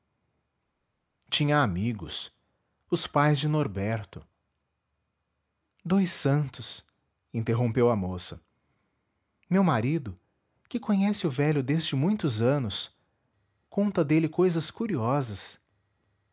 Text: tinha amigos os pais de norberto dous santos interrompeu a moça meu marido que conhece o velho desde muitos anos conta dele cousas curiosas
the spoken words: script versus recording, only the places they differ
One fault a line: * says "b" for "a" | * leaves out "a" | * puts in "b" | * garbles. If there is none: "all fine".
all fine